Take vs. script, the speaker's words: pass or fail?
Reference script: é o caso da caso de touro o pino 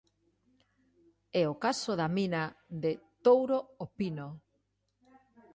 fail